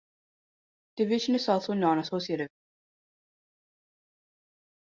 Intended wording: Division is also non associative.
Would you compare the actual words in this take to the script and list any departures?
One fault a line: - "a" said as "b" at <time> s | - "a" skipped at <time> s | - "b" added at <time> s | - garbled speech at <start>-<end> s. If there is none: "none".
none